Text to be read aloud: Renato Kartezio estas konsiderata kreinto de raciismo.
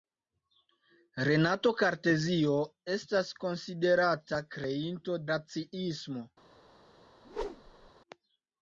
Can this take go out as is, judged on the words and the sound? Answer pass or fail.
fail